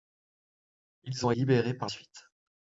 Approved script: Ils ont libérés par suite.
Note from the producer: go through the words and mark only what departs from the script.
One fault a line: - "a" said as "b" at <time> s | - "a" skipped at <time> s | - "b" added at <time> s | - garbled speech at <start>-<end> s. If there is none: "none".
none